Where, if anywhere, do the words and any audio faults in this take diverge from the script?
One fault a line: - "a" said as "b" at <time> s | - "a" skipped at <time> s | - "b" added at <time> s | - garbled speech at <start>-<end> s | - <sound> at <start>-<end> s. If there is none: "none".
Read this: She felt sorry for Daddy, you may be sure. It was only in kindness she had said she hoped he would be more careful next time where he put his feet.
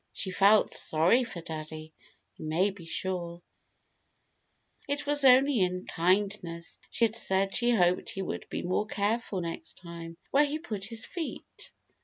none